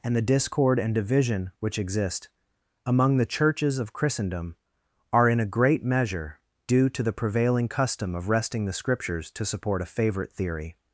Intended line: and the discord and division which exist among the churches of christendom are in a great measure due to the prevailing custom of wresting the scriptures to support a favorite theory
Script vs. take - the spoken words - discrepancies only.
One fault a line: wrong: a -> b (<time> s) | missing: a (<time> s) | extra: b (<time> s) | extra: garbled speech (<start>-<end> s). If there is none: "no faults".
no faults